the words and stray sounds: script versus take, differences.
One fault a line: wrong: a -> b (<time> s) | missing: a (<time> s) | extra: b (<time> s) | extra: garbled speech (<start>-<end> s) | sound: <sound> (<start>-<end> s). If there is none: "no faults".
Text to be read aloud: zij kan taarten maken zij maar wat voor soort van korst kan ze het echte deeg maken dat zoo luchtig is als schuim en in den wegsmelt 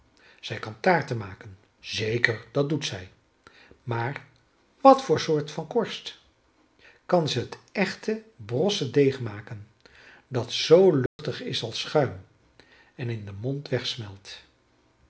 extra: zeker dat doet (1.8 s)
extra: brosse (8.3 s)
sound: dropout (11.1-11.2 s)
extra: mond (13.4 s)